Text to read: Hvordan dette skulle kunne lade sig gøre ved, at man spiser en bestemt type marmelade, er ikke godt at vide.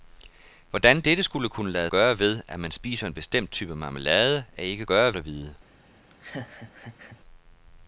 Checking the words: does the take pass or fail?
fail